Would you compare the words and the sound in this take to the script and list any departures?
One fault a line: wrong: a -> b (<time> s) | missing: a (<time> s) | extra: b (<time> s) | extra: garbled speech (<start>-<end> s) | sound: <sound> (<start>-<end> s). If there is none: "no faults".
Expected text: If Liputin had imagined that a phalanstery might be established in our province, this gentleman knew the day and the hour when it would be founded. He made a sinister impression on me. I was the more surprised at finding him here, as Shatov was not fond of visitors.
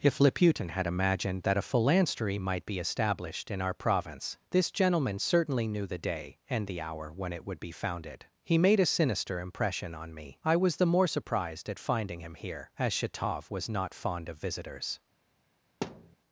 extra: certainly (5.2 s)
sound: thud (15.8-16.2 s)